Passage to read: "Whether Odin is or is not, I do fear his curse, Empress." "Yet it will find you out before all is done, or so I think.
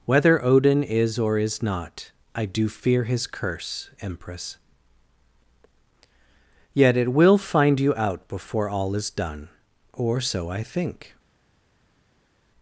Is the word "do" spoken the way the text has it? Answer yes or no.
yes